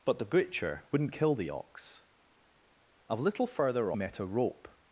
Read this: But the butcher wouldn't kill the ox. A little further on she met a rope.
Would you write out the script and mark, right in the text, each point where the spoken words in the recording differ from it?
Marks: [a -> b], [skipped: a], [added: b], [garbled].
But the butcher wouldn't kill the ox. A little further [skipped: on she] met a rope.